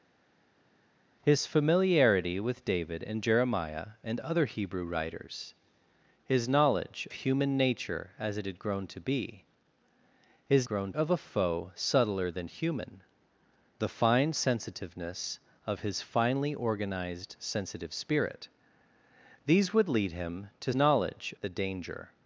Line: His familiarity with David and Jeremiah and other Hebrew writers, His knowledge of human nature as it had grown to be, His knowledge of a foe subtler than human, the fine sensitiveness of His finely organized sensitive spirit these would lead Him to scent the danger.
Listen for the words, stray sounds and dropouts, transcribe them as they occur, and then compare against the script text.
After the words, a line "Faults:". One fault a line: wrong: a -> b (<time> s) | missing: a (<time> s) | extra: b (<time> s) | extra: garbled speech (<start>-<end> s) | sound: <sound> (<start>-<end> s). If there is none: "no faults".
His familiarity with David and Jeremiah and other Hebrew writers, His knowledge human nature as it had grown to be, His grown of a foe subtler than human, the fine sensitiveness of His finely organized sensitive spirit these would lead Him to knowledge the danger.
Faults:
missing: of (7.1 s)
wrong: knowledge -> grown (10.6 s)
wrong: scent -> knowledge (20.7 s)